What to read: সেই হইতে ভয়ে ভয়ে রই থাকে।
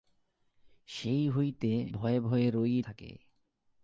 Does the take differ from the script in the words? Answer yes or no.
no